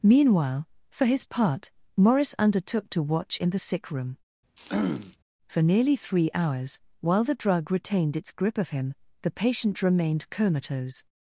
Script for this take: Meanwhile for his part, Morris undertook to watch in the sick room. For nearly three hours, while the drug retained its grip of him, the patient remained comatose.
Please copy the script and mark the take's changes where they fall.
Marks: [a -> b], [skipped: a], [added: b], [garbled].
Meanwhile for his part, Morris undertook to watch in the sick room. For nearly three hours, while the drug retained its grip of him, the patient remained comatose.